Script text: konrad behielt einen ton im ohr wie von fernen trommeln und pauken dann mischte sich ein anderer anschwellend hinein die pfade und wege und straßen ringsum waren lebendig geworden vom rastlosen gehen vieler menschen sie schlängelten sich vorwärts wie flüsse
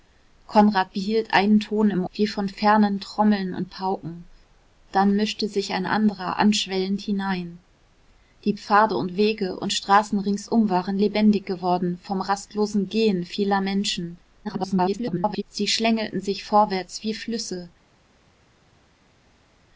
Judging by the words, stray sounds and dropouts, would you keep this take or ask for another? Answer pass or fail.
fail